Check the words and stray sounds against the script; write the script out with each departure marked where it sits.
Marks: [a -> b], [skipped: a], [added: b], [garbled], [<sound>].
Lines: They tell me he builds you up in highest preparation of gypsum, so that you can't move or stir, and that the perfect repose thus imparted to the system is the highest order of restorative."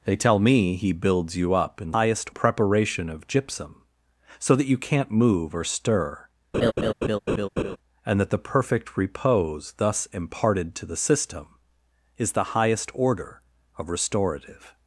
They tell me he builds you up in highest preparation of gypsum, so that you can't move or stir, [laugh] and that the perfect repose thus imparted to the system is the highest order of restorative."